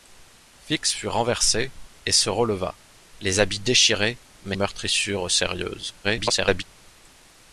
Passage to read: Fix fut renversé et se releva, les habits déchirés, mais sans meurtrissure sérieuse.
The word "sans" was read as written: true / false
false